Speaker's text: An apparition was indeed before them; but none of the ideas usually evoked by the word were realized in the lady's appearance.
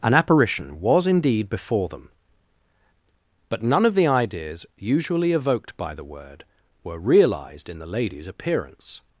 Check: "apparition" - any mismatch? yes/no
no